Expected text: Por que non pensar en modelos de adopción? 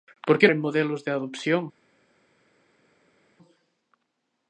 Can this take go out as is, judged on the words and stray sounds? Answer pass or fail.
fail